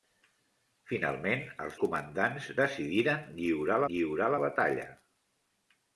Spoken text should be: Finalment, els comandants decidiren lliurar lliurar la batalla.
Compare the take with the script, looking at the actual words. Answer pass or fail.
pass